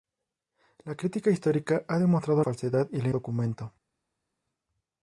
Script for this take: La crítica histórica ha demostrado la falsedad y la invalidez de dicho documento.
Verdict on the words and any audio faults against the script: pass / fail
fail